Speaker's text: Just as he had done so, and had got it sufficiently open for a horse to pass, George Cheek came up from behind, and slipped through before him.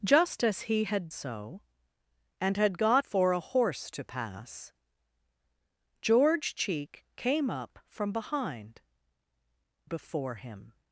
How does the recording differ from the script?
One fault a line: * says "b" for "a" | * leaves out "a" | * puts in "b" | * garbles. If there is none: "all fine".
* leaves out "done"
* leaves out "it sufficiently open"
* leaves out "and slipped through"